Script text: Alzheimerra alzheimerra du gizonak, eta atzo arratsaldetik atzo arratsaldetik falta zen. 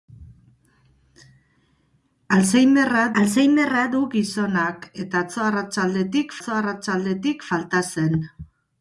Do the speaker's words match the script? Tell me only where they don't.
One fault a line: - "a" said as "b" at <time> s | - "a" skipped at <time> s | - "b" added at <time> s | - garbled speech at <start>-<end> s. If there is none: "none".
none